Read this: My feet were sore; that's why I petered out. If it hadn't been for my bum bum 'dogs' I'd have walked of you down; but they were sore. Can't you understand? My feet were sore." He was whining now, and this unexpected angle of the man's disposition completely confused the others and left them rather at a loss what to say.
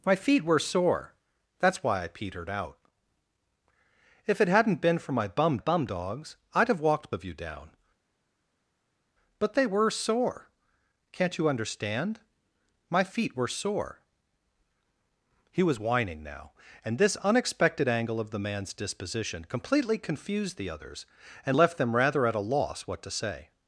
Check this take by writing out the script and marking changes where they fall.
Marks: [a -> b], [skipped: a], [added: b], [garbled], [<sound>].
My feet were sore; that's why I petered out. If it hadn't been for my bum bum 'dogs' I'd have walked of you down; but they were sore. Can't you understand? My feet were sore." He was whining now, and this unexpected angle of the man's disposition completely confused the others and left them rather at a loss what to say.